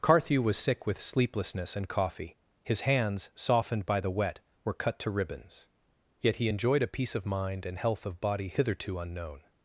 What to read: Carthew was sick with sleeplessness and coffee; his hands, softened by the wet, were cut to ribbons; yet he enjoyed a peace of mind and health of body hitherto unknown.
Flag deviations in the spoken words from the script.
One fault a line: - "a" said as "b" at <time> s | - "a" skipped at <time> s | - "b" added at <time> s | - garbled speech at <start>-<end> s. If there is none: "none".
none